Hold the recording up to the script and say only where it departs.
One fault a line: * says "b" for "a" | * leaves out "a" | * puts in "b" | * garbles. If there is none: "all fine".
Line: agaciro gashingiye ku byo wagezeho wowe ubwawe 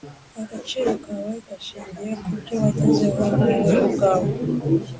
* puts in "kawe"